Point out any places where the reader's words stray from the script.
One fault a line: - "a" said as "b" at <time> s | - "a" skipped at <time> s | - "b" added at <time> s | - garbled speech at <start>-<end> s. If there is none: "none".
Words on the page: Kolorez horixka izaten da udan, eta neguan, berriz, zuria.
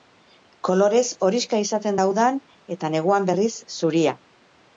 none